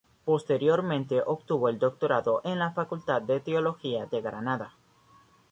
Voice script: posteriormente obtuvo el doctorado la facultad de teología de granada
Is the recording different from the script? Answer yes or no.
yes